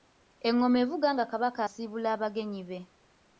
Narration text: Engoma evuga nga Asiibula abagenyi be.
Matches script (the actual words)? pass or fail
fail